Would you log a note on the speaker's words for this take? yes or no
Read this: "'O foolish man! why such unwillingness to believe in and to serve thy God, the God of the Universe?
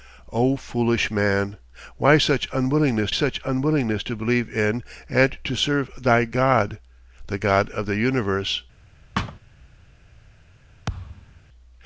yes